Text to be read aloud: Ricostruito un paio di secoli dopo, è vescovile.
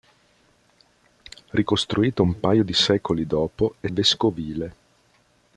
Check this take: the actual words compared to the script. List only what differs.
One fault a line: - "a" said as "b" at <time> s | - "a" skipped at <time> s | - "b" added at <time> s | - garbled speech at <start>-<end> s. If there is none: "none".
none